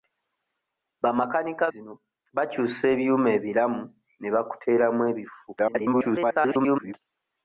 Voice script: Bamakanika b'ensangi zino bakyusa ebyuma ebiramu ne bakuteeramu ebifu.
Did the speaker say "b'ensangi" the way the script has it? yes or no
no